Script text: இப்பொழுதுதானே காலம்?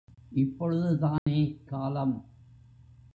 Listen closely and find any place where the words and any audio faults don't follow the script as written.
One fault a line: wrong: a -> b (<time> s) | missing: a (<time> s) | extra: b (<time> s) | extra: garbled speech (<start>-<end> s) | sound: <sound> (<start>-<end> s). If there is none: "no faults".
sound: dropout (1.2-1.3 s)